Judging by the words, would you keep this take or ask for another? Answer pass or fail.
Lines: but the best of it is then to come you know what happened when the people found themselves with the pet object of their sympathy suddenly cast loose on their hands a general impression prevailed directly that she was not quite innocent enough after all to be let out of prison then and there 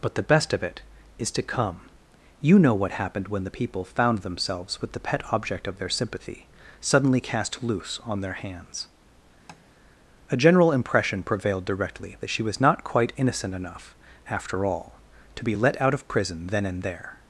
fail